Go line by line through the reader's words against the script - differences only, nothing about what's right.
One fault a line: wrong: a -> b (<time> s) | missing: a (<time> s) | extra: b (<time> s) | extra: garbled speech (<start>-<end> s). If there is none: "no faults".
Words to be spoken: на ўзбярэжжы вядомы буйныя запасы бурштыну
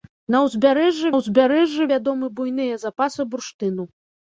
extra: ўзбярэжжы (1.2 s)